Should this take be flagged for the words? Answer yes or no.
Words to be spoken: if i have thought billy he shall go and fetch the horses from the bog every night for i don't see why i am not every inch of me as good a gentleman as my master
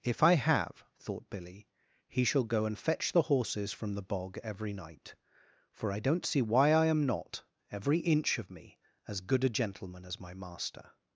no